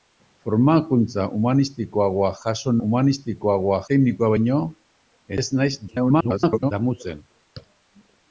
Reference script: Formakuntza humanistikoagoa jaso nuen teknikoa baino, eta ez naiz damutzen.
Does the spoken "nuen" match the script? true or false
false